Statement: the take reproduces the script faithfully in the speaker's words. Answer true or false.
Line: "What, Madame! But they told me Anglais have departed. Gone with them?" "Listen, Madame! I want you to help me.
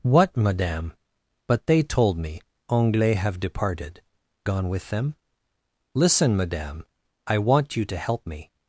true